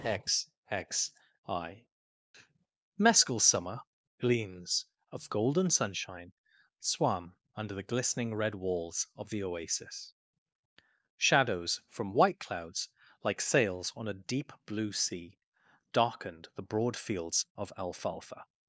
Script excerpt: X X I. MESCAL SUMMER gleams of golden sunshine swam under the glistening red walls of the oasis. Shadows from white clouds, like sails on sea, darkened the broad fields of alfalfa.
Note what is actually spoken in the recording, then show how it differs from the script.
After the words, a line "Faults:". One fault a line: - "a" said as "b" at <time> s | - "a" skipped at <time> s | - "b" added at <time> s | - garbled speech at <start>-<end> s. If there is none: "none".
X X I. MESCAL SUMMER gleams of golden sunshine swam under the glistening red walls of the oasis. Shadows from white clouds, like sails on a deep blue sea, darkened the broad fields of alfalfa.
Faults:
- "a deep blue" added at 14.1 s